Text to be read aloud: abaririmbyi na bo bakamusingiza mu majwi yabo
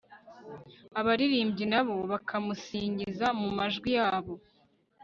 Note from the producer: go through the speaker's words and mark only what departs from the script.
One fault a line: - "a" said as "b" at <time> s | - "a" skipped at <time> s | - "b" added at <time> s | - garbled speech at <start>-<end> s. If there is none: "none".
none